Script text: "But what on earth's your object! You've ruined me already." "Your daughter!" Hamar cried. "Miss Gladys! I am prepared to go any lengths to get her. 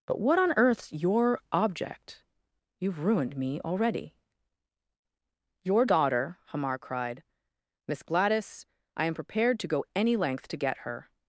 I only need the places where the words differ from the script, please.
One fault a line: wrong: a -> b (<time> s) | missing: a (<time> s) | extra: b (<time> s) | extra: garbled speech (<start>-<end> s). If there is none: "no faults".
wrong: lengths -> length (10.2 s)